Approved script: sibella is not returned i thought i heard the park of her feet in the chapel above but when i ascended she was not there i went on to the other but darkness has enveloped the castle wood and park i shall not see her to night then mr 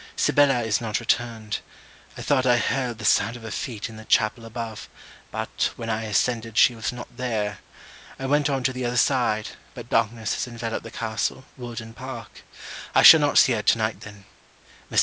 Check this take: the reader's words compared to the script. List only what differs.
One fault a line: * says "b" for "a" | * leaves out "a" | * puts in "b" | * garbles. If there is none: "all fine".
* says "sound" for "park"
* puts in "side"